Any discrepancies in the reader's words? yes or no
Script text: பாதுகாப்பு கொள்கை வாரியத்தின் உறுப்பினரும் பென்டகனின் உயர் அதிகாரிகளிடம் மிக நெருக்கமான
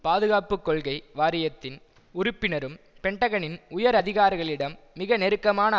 no